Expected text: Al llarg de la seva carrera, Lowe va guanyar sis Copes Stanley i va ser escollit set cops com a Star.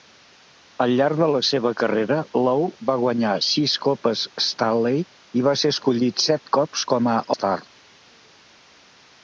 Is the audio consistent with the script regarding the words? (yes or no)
yes